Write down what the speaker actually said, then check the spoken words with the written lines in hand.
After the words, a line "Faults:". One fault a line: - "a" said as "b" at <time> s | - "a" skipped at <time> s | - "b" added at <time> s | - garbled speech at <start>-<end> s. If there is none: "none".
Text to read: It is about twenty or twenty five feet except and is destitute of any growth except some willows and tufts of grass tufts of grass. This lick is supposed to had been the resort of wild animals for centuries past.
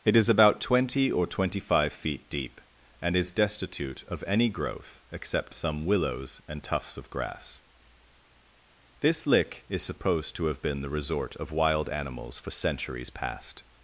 It is about twenty or twenty five feet deep and is destitute of any growth except some willows and tufts of grass. This lick is supposed to have been the resort of wild animals for centuries past.
Faults:
- "except" said as "deep" at 2.3 s
- "tufts of grass" skipped at 7.6 s
- "had" said as "have" at 10.5 s